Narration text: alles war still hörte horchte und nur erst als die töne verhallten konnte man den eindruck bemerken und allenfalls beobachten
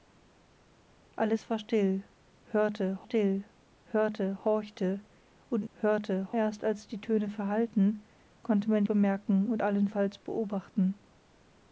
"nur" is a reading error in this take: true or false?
true